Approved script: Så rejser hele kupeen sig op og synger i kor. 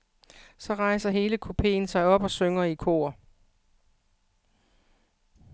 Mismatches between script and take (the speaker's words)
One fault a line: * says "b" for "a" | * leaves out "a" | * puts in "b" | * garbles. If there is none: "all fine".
all fine